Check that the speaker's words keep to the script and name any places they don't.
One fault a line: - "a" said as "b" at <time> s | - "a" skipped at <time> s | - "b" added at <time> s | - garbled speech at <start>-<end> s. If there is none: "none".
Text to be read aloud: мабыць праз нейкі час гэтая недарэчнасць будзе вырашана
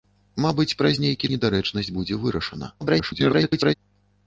- "час гэтая" skipped at 1.3 s
- garbled speech at 2.8-3.7 s